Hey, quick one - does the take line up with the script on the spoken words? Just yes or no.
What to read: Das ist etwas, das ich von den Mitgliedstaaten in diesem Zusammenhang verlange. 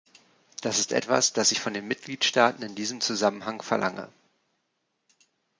yes